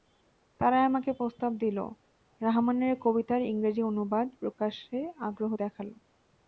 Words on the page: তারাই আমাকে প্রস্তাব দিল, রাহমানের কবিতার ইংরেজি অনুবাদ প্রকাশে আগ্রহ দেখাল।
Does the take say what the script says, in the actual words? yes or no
yes